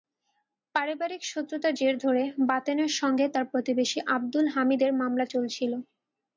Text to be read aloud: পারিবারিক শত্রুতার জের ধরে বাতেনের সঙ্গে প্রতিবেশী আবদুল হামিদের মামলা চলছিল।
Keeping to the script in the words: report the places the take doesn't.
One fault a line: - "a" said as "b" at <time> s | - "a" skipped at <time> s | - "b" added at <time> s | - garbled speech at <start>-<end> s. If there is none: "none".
- "তাঁর" added at 3.3 s